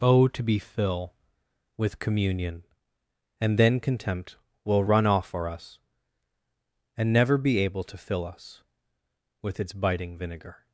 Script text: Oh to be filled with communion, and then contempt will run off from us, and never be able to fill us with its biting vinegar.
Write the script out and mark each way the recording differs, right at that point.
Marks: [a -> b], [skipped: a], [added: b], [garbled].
Oh to be [filled -> fill] with communion, and then contempt will run off [from -> for] us, and never be able to fill us with its biting vinegar.